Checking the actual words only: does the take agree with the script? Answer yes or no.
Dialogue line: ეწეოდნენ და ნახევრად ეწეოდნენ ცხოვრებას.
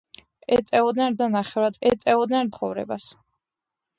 yes